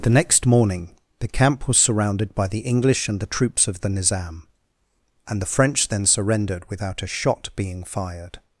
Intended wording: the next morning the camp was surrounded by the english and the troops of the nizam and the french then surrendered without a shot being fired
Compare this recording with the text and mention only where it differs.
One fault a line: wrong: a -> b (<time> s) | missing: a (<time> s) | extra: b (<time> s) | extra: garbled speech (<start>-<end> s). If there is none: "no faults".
no faults